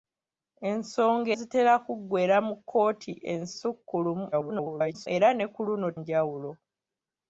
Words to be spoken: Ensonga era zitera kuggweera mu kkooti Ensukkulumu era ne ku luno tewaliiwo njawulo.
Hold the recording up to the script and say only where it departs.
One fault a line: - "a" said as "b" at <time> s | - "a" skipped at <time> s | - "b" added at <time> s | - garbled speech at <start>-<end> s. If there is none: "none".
- "era" skipped at 1.3 s
- garbled speech at 4.3-5.1 s
- "tewaliiwo" skipped at 5.9 s